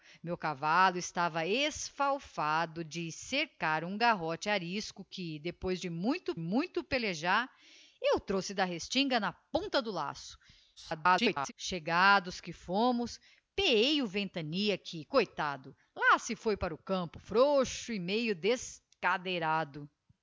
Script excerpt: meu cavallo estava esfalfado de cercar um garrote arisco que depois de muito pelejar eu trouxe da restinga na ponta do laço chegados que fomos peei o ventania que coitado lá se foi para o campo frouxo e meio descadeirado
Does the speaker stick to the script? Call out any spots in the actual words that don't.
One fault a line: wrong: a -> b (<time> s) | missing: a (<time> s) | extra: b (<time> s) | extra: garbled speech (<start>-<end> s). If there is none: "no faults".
extra: muito (6.4 s)
extra: garbled speech (10.8-11.5 s)